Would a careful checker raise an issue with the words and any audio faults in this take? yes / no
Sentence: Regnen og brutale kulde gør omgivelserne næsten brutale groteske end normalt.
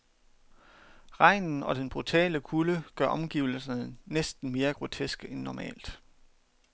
yes